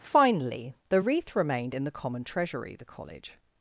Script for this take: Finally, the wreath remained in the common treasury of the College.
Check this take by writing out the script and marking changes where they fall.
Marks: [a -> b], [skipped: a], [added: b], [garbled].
Finally, the wreath remained in the common treasury [skipped: of] the College.